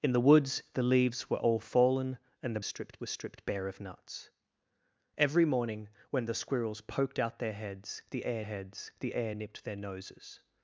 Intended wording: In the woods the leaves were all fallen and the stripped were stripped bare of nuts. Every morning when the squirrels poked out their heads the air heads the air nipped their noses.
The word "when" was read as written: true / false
true